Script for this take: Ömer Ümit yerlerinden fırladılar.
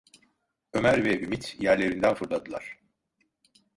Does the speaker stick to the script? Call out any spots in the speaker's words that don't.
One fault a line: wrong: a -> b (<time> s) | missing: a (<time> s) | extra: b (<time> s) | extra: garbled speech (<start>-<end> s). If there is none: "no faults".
extra: ve (1.1 s)